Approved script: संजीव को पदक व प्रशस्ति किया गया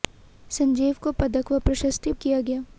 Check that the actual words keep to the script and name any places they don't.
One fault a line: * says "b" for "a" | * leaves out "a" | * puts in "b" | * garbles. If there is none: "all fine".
all fine